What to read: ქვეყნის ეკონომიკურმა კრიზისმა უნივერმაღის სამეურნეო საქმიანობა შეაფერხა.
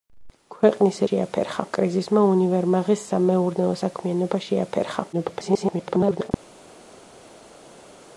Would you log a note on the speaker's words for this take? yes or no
yes